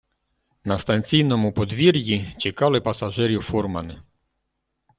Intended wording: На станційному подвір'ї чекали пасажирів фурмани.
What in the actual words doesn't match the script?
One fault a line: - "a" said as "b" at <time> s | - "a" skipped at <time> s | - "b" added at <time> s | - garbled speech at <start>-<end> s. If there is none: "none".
none